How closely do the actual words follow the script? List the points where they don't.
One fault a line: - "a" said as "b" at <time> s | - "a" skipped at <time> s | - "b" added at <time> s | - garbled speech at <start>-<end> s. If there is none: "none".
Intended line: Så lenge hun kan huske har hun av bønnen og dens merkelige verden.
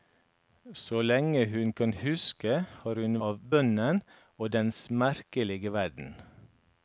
none